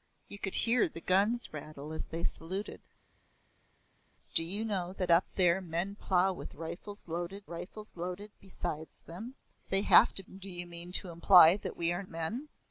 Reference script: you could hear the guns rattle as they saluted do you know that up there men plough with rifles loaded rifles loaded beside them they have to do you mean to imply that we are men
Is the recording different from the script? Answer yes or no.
no